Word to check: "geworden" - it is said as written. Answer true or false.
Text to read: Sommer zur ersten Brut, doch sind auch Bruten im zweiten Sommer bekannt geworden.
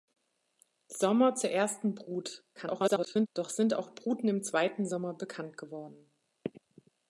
true